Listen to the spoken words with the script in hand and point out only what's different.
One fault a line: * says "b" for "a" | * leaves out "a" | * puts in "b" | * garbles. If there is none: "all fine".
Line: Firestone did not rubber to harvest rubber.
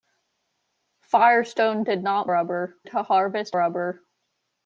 all fine